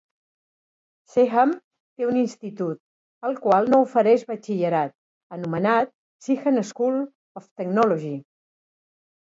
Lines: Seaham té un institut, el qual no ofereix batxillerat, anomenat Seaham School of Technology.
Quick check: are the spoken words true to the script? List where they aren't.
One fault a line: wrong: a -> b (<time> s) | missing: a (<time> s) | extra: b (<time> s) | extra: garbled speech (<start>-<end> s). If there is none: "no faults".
no faults